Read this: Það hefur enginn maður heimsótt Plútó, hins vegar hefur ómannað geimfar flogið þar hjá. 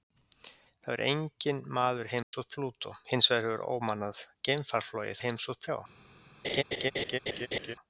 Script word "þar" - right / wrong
wrong